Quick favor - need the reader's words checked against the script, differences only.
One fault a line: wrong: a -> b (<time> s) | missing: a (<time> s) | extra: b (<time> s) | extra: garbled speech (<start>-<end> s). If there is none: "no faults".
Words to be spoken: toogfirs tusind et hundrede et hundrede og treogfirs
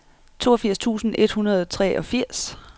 missing: et hundrede (1.6 s)